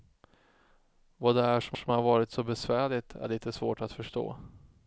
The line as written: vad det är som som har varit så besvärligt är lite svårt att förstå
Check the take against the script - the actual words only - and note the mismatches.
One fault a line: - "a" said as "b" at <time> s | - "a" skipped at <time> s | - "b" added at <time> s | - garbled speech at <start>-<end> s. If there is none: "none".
none